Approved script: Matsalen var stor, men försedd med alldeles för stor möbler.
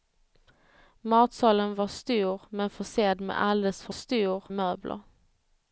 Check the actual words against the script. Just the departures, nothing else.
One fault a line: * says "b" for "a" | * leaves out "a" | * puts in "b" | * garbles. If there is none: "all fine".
all fine